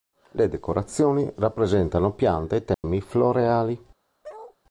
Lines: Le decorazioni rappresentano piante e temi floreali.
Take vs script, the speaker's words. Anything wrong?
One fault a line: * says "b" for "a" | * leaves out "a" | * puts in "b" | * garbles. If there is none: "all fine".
all fine